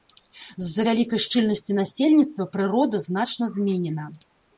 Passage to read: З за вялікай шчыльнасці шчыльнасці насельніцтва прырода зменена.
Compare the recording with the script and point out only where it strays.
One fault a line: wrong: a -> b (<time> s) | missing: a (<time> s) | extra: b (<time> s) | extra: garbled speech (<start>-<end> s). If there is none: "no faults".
missing: шчыльнасці (1.8 s)
extra: значна (3.1 s)